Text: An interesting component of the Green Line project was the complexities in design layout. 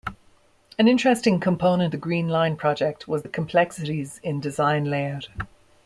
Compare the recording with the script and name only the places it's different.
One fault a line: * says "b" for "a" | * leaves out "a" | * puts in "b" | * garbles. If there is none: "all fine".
* leaves out "of"